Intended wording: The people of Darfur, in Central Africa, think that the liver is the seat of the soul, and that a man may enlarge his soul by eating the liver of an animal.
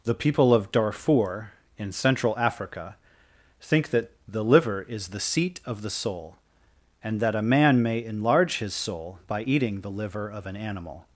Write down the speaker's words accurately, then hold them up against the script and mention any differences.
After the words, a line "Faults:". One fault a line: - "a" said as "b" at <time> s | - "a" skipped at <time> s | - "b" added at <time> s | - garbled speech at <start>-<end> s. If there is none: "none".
The people of Darfur, in Central Africa, think that the liver is the seat of the soul, and that a man may enlarge his soul by eating the liver of an animal.
Faults:
none